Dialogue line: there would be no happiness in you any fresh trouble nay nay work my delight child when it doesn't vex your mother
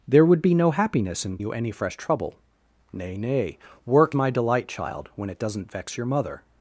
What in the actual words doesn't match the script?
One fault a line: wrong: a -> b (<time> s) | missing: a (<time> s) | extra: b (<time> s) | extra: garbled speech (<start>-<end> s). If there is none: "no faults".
no faults